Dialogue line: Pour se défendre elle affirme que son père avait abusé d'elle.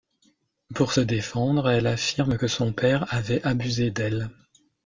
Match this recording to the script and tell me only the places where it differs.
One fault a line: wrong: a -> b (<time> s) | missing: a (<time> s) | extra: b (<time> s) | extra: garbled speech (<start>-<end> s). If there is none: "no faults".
no faults